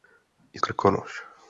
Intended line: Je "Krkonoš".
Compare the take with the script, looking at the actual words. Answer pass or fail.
pass